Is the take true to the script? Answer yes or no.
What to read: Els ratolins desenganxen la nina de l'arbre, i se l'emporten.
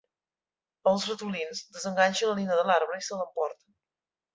yes